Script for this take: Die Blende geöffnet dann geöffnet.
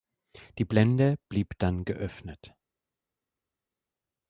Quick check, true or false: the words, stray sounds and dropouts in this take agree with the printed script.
false